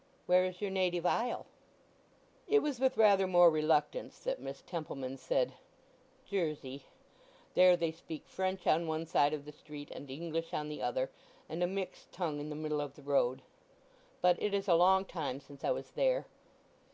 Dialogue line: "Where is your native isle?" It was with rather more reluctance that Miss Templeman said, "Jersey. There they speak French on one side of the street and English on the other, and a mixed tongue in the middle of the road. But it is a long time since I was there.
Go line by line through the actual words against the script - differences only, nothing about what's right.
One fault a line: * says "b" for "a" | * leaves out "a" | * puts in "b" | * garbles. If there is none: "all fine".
all fine